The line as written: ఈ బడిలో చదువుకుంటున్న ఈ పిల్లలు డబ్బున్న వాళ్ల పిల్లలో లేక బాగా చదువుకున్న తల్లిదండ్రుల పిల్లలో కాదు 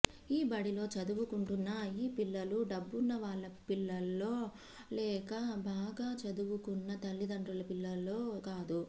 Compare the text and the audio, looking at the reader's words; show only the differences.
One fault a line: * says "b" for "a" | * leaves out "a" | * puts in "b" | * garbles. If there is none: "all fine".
all fine